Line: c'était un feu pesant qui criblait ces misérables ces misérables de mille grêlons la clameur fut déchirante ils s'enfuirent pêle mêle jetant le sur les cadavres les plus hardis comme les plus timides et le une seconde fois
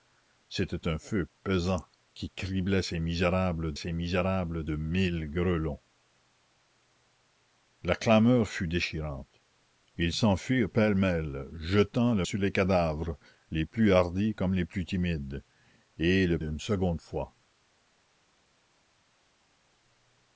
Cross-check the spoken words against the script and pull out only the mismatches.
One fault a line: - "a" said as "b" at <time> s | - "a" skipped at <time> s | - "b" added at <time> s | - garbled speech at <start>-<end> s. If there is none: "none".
none